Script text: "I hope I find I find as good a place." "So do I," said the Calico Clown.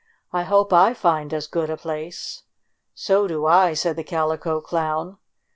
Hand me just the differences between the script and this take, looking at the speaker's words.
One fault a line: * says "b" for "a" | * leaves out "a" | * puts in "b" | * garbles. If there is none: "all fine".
* leaves out "I find"